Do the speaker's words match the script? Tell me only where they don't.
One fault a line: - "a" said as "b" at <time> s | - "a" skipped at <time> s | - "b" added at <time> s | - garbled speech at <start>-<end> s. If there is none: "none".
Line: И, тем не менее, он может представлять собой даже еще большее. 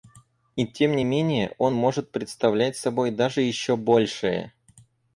none